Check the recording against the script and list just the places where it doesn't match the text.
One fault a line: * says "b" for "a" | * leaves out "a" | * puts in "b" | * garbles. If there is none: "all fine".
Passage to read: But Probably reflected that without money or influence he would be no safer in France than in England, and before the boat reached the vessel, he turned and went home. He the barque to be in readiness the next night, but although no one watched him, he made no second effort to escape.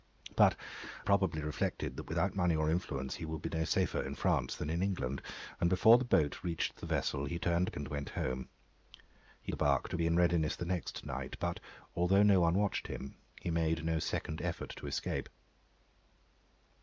all fine